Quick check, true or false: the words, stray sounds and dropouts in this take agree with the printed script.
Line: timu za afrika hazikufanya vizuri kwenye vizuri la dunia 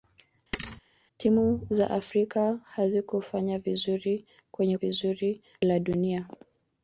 false